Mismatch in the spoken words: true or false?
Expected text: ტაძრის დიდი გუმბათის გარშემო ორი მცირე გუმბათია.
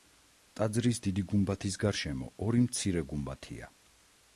false